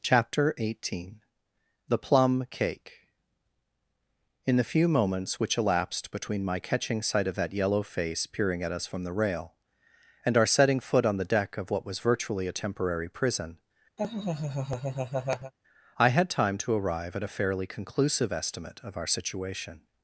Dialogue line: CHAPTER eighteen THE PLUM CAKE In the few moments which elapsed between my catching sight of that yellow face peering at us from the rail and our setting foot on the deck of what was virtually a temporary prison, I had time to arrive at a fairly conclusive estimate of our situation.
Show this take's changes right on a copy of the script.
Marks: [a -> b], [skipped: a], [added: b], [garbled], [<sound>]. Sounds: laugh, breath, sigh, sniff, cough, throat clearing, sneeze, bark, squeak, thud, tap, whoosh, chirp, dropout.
CHAPTER eighteen THE PLUM CAKE In the few moments which elapsed between my catching sight of that yellow face peering at us from the rail and our setting foot on the deck of what was virtually a temporary prison, [laugh] I had time to arrive at a fairly conclusive estimate of our situation.